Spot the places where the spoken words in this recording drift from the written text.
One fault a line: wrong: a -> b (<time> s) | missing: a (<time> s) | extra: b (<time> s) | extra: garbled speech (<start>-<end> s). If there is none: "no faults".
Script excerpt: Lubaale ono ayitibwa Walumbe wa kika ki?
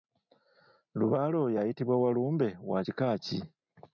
wrong: ono -> oyo (1.4 s)